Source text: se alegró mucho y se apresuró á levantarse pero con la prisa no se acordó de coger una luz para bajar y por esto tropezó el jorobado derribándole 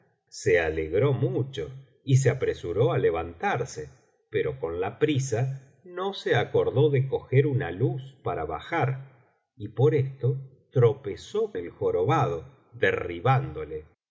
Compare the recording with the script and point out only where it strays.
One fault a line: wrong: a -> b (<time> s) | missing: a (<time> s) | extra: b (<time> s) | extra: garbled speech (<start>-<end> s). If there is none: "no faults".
no faults